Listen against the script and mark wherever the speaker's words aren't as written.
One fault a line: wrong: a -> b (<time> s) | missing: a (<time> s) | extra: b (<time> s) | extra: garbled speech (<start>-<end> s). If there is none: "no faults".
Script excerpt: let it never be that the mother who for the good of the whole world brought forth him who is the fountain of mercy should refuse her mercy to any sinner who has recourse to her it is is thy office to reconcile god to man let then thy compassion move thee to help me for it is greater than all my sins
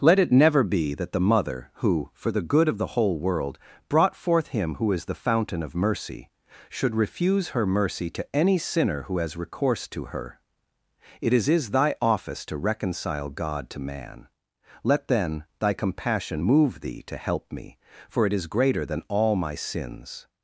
no faults